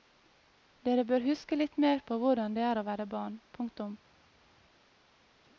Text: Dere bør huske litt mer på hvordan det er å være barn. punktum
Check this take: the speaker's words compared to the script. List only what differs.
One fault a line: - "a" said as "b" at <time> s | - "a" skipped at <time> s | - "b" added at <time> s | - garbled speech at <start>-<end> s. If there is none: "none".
none